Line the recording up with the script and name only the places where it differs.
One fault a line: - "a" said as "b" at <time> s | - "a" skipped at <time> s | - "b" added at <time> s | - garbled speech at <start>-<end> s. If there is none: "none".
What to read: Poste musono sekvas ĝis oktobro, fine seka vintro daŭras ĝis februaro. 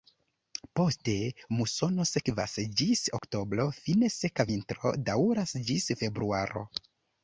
none